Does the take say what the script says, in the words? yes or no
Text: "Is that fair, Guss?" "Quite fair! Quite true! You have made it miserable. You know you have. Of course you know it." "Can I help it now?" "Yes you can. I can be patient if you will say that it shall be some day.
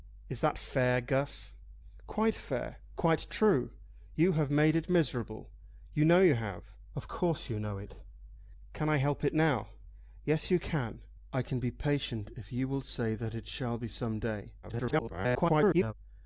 no